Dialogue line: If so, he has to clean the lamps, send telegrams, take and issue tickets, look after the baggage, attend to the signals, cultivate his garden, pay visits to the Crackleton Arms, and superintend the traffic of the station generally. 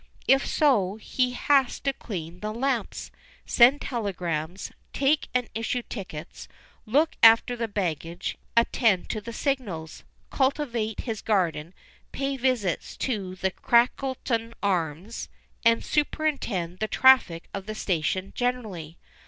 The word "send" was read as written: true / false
true